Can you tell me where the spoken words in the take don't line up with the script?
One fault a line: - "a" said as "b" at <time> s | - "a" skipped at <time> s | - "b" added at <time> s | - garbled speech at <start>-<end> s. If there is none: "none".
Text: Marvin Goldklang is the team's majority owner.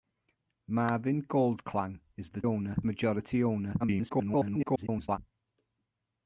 - "team's" said as "owner" at 2.4 s
- garbled speech at 3.8-5.2 s